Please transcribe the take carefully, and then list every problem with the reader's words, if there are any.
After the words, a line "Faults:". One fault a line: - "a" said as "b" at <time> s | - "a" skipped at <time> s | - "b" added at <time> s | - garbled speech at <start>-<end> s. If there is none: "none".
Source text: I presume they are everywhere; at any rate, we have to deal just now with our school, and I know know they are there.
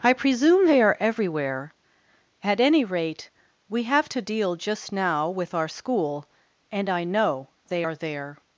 I presume they are everywhere; at any rate, we have to deal just now with our school, and I know they are there.
Faults:
- "know" skipped at 7.5 s